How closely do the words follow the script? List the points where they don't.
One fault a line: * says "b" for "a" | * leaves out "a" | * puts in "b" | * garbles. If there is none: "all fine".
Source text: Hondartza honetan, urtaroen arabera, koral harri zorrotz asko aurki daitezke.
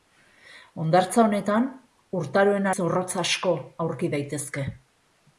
* leaves out "arabera koral harri"